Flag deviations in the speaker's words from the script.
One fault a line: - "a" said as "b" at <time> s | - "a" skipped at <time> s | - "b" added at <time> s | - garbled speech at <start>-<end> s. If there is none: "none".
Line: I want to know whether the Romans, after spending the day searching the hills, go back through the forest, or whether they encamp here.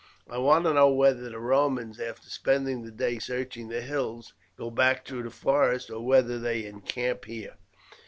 none